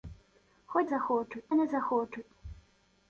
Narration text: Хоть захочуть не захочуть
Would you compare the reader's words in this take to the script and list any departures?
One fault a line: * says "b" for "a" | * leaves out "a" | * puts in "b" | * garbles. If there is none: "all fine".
all fine